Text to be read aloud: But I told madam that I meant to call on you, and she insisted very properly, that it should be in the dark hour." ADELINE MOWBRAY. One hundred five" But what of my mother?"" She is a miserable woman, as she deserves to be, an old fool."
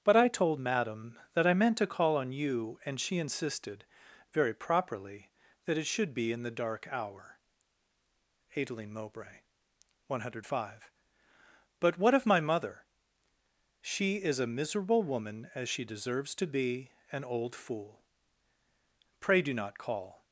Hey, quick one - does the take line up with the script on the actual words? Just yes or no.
no